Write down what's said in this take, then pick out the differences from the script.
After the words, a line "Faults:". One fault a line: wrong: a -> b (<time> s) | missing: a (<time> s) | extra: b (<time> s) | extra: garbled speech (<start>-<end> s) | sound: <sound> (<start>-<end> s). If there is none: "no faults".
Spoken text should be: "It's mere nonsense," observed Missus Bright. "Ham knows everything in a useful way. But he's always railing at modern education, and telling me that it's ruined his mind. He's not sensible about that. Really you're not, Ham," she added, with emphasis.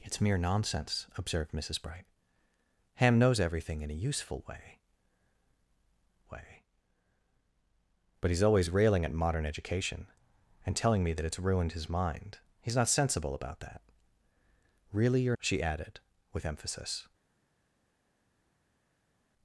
"It's mere nonsense," observed Missus Bright. "Ham knows everything in a useful way way. But he's always railing at modern education, and telling me that it's ruined his mind. He's not sensible about that. Really you're," she added, with emphasis.
Faults:
extra: way (6.3 s)
missing: not Ham (15.4 s)